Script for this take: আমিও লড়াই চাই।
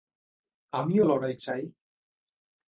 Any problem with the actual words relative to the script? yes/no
no